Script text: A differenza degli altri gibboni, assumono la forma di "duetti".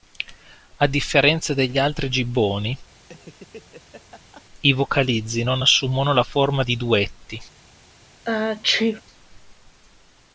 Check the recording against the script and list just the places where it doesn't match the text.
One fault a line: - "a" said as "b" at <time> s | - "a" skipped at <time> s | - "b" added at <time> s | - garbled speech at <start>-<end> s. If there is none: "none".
- "i vocalizzi non" added at 4.6 s